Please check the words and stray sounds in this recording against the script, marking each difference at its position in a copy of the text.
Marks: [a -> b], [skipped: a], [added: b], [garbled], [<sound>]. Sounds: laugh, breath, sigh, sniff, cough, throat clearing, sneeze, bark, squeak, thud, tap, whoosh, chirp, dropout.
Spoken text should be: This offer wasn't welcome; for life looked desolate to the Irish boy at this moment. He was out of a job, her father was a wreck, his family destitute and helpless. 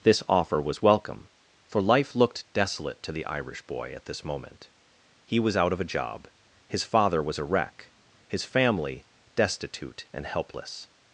This offer [wasn't -> was] welcome; for life looked desolate to the Irish boy at this moment. He was out of a job, [her -> his] father was a wreck, his family destitute and helpless.